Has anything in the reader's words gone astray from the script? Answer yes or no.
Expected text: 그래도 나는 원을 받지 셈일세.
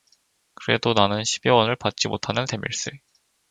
yes